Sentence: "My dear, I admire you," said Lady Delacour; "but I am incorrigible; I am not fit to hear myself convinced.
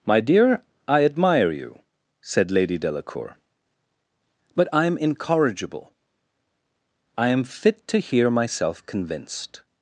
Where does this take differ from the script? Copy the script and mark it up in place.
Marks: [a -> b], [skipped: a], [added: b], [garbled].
"My dear, I admire you," said Lady Delacour; "but I am incorrigible; I am [skipped: not] fit to hear myself convinced.